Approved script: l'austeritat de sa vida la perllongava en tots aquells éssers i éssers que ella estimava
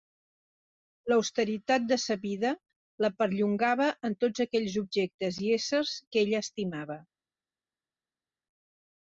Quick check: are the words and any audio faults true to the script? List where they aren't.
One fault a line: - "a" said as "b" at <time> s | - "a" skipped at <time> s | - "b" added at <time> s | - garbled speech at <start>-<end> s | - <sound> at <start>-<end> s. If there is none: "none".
- "éssers" said as "objectes" at 4.8 s